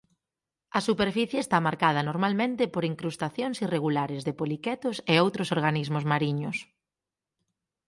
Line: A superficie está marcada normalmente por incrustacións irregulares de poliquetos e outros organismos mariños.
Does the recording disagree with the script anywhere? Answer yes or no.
no